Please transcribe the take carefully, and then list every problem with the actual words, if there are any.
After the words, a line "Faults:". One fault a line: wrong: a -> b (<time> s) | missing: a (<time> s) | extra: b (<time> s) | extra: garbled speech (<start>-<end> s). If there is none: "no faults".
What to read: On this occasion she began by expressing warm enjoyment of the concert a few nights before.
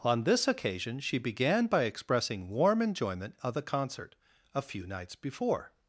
On this occasion she began by expressing warm enjoyment of the concert a few nights before.
Faults:
no faults